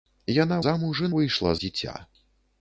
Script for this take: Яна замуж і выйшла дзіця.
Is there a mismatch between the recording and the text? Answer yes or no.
no